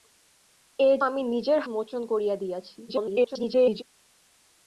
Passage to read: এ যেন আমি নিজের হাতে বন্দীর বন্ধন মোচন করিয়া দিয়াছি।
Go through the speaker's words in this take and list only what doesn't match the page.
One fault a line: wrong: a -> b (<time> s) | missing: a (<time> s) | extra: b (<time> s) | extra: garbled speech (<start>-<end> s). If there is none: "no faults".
missing: যেন (1.0 s)
missing: হাতে বন্দীর বন্ধন (1.6 s)
extra: garbled speech (2.9-3.8 s)